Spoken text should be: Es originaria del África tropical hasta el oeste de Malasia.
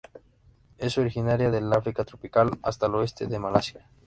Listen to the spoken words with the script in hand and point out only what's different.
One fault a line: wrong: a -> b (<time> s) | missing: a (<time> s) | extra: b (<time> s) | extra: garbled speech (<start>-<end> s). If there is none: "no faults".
no faults